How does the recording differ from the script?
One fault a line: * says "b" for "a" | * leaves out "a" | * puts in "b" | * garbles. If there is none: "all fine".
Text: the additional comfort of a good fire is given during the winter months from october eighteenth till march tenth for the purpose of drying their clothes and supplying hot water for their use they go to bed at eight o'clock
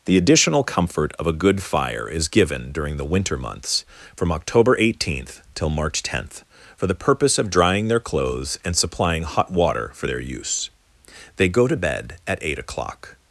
all fine